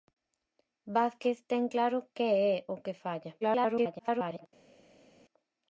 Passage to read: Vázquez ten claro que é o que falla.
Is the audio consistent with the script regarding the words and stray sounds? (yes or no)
no